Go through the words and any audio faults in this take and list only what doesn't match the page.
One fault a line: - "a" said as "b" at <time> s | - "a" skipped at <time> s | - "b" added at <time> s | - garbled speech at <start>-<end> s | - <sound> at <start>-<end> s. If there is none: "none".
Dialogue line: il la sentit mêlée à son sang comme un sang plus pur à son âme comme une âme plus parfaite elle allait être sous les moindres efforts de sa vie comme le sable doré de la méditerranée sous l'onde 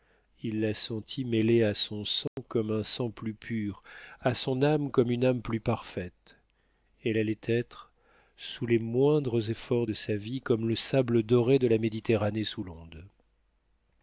- dropout at 2.3-2.4 s